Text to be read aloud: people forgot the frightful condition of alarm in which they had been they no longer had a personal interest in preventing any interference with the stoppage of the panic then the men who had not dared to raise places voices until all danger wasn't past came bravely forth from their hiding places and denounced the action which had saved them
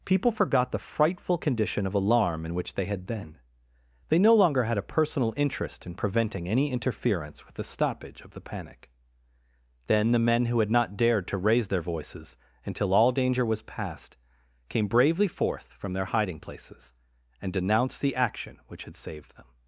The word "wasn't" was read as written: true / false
false